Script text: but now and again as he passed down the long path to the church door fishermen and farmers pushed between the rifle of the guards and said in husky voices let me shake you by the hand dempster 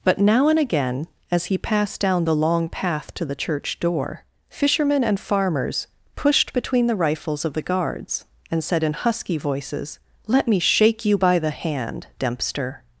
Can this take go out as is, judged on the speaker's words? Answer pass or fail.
fail